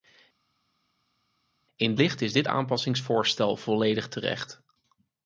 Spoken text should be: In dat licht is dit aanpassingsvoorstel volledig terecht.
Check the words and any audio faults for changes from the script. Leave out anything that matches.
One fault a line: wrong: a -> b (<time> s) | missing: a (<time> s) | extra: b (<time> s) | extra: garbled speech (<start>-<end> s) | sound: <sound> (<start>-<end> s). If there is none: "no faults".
missing: dat (1.9 s)